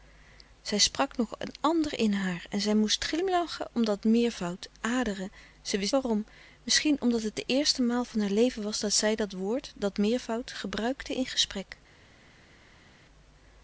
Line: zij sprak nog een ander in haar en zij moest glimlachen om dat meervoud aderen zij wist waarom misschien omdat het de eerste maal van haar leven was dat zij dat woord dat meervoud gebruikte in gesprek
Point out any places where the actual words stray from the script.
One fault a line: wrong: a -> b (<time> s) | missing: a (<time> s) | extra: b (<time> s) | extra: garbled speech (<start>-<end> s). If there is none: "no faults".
no faults